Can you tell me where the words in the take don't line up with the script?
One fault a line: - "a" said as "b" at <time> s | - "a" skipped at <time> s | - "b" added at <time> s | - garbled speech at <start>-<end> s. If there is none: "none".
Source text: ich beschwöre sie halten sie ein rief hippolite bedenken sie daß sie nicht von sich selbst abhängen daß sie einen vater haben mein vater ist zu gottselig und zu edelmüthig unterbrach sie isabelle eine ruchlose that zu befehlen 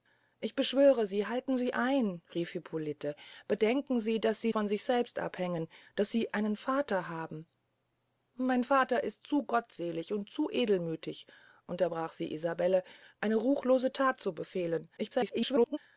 - "nicht" skipped at 4.5 s
- garbled speech at 15.0-15.8 s